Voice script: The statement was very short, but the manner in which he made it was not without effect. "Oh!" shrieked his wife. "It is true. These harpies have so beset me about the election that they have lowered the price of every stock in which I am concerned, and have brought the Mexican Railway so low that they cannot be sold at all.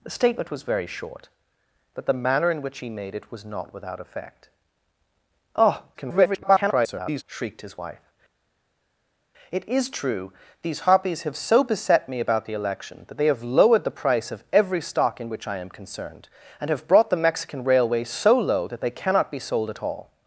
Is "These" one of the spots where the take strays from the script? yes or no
no